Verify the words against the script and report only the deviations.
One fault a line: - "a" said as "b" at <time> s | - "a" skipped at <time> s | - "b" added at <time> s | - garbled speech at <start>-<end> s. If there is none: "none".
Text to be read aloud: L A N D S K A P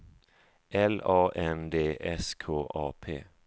none